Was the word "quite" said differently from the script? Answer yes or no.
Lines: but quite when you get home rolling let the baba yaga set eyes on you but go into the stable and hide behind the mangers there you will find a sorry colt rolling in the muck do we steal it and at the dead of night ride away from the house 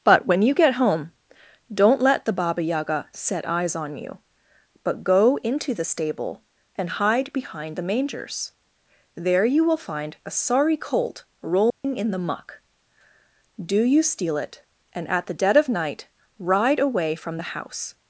yes